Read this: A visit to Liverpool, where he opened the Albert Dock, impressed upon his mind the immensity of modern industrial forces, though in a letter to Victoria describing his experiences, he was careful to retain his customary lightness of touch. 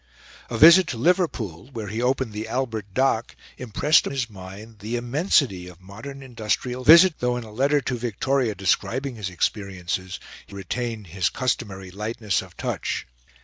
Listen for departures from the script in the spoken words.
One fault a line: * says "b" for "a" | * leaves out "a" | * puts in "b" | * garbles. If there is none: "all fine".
* leaves out "upon"
* says "visit" for "forces"
* leaves out "was careful to"